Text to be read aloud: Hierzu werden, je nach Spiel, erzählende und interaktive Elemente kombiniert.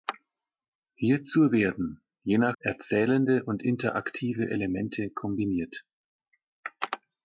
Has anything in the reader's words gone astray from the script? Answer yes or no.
yes